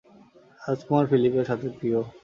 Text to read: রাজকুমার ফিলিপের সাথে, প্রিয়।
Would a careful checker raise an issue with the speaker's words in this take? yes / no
no